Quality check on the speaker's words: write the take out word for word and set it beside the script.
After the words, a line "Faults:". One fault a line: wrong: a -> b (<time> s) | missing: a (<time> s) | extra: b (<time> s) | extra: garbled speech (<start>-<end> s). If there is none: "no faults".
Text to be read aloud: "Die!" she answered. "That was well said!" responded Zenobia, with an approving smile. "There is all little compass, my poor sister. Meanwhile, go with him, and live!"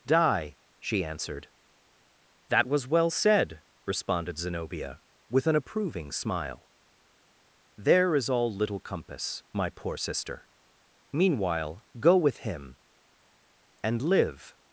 "Die!" she answered. "That was well said!" responded Zenobia, with an approving smile. "There is all little compass, my poor sister. Meanwhile, go with him, and live!"
Faults:
no faults